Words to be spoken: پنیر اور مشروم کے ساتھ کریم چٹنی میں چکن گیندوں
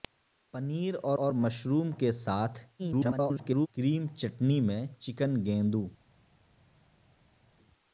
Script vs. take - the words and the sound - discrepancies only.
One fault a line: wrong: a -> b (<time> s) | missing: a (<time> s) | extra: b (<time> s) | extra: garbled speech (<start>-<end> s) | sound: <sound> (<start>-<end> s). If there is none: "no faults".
extra: اور (1.2 s)
extra: garbled speech (2.8-3.7 s)